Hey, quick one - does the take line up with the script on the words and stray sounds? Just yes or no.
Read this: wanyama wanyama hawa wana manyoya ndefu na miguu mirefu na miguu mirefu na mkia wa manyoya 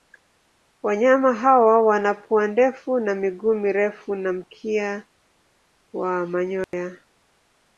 no